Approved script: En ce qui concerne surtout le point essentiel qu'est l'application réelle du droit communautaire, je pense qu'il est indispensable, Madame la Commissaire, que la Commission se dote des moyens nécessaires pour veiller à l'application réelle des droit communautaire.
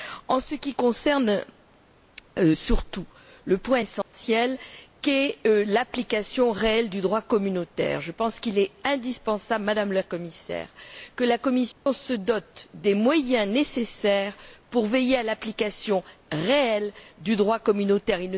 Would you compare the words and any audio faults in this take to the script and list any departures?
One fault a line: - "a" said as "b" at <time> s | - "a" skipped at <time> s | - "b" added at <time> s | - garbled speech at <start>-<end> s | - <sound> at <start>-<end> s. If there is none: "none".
- dropout at 4.0-4.1 s
- dropout at 11.7-11.9 s
- "des" said as "du" at 17.2 s